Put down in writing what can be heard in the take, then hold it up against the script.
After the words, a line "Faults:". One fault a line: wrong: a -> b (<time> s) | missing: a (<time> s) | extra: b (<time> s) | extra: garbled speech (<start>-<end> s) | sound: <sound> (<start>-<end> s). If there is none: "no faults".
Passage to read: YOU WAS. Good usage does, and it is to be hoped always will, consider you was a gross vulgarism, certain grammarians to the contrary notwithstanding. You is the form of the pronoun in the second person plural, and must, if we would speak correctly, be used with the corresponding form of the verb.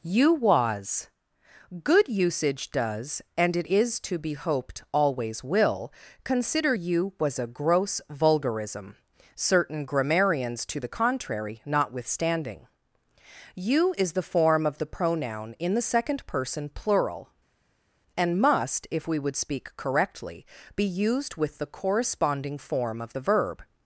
YOU WAS. Good usage does, and it is to be hoped always will, consider you was a gross vulgarism, certain grammarians to the contrary notwithstanding. You is the form of the pronoun in the second person plural, and must, if we would speak correctly, be used with the corresponding form of the verb.
Faults:
no faults